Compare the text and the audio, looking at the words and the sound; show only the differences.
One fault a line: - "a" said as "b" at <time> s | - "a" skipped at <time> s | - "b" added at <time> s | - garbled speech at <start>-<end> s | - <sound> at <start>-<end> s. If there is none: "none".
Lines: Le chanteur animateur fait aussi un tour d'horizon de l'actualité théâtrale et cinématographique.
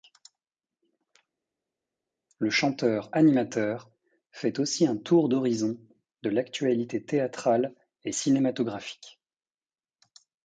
none